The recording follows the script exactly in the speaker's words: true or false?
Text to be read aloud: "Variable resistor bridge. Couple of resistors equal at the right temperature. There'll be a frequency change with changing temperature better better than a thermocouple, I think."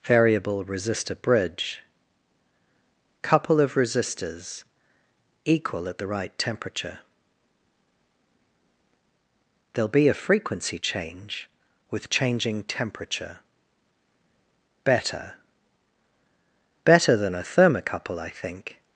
true